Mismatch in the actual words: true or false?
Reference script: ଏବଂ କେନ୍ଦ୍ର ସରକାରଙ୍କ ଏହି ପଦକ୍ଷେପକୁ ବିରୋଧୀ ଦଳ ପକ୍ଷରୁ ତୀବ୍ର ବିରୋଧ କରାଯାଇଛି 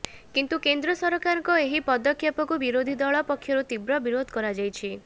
true